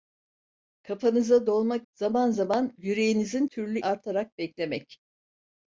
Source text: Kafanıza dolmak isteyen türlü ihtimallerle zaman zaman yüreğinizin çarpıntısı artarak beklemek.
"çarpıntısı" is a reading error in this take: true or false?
true